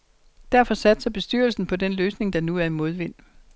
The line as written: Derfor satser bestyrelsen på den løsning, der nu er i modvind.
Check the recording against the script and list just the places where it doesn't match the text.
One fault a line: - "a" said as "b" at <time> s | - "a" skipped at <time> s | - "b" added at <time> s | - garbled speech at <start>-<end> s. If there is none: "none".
none